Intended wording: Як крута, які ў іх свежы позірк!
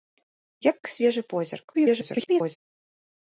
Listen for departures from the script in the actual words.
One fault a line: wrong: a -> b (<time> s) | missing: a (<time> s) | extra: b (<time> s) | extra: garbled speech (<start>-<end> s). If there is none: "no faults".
missing: крута які ў (0.8 s)
extra: garbled speech (1.7-2.6 s)